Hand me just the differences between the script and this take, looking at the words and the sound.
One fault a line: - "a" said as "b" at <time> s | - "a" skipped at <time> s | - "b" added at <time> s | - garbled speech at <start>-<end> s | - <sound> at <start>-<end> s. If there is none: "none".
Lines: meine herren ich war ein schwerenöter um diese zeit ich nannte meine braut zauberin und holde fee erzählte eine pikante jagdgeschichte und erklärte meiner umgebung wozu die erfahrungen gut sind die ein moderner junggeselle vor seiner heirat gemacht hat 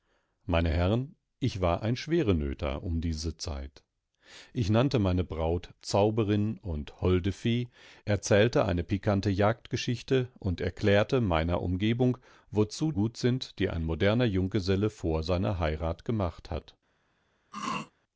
- "die erfahrungen" skipped at 12.9 s
- throat clearing at 17.5-17.9 s